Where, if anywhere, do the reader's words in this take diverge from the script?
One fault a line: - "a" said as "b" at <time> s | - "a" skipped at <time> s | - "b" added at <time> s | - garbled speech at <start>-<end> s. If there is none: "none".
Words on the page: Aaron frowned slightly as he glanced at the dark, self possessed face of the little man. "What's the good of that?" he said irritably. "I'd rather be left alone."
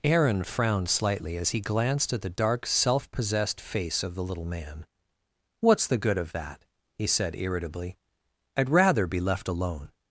none